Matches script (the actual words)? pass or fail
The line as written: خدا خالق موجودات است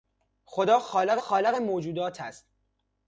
fail